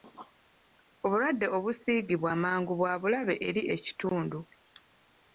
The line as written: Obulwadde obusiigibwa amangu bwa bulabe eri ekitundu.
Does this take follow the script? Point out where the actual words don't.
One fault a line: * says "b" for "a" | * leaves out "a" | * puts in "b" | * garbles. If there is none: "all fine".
all fine